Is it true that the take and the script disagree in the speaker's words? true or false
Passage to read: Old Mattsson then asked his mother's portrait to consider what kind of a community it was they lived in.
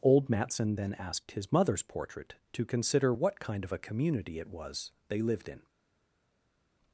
false